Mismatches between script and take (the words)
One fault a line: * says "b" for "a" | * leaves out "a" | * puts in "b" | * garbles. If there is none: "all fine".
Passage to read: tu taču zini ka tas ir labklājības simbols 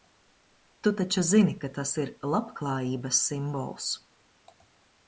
all fine